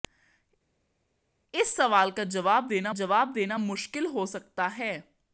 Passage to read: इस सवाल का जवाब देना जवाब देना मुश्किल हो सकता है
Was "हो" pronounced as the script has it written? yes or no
yes